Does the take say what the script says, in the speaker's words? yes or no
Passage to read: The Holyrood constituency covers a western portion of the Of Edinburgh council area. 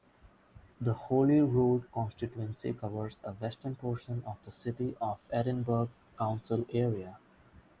no